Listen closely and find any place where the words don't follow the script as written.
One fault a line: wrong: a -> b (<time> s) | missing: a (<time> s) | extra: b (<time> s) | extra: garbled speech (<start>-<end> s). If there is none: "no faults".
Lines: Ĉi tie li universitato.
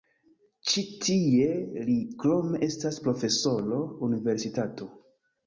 extra: krome estas profesoro (2.2 s)